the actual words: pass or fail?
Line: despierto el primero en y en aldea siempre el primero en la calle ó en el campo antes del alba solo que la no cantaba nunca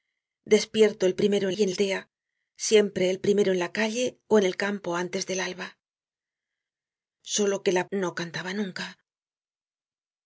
pass